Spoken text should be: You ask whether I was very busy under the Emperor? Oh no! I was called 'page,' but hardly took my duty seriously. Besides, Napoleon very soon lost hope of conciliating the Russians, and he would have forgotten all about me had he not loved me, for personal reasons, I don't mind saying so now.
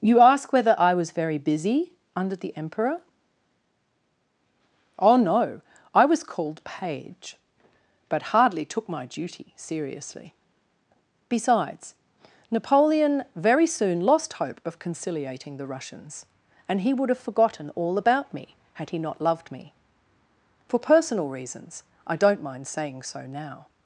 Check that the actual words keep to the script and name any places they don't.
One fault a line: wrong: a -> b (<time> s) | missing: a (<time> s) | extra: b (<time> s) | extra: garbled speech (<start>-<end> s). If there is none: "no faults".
no faults